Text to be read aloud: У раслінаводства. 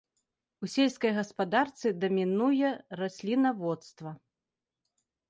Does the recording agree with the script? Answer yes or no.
no